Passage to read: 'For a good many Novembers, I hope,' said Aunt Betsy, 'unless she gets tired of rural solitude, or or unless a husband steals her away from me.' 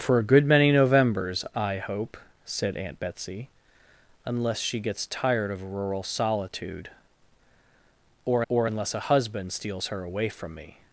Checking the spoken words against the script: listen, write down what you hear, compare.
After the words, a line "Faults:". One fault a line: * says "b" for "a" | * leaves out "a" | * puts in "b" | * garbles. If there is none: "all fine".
'For a good many Novembers, I hope,' said Aunt Betsy, 'unless she gets tired of rural solitude, or or unless a husband steals her away from me.'
Faults:
all fine